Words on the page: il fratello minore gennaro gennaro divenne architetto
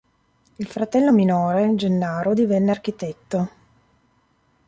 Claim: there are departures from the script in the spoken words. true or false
true